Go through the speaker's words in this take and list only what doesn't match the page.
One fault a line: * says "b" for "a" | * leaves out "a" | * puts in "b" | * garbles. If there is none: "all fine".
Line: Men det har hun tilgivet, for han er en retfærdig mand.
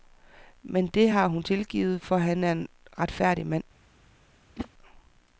all fine